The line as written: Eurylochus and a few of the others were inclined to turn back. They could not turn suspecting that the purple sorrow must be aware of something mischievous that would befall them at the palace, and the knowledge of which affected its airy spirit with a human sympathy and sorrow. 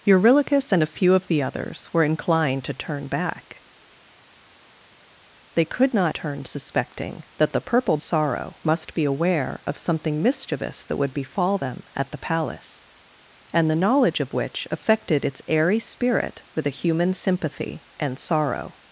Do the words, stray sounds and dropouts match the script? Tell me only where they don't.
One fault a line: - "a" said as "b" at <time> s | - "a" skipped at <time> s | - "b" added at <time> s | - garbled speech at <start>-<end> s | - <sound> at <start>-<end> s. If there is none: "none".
none